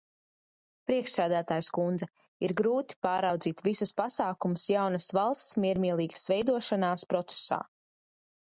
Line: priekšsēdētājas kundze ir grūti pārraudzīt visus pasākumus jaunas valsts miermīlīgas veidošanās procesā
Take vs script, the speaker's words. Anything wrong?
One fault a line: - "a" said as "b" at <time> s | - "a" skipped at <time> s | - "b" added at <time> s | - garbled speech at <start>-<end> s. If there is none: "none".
none